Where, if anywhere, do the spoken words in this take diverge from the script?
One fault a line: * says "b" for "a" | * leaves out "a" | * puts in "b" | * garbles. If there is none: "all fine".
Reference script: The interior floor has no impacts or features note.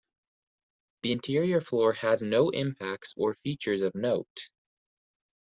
* puts in "of"